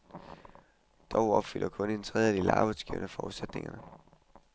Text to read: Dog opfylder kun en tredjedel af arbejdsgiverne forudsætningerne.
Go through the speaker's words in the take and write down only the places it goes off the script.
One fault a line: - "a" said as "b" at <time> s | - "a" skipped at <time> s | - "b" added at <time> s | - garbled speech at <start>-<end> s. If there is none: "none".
none